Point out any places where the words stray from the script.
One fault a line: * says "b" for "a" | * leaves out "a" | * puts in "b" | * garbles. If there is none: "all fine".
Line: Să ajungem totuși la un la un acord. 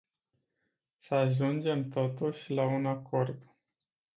* leaves out "la un"